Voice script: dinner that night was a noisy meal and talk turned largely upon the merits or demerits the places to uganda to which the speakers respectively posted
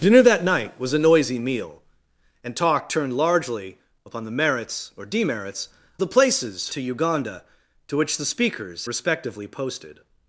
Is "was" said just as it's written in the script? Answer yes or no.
yes